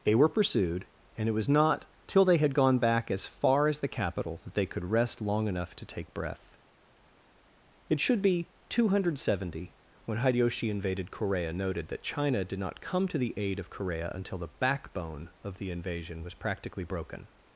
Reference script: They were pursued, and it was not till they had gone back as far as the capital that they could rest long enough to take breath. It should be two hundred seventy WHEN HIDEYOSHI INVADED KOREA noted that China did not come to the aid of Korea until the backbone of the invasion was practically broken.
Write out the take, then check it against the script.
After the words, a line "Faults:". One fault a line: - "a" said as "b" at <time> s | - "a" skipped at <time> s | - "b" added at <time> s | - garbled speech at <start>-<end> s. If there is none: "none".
They were pursued, and it was not till they had gone back as far as the capital that they could rest long enough to take breath. It should be two hundred seventy WHEN HIDEYOSHI INVADED KOREA noted that China did not come to the aid of Korea until the backbone of the invasion was practically broken.
Faults:
none